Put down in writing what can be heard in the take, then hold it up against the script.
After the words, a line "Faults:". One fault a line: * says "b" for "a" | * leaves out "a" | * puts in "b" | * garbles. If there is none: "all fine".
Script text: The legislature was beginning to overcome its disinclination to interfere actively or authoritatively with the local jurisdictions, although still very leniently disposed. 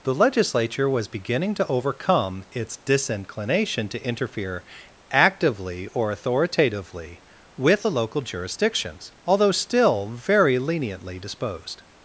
The legislature was beginning to overcome its disinclination to interfere actively or authoritatively with the local jurisdictions, although still very leniently disposed.
Faults:
all fine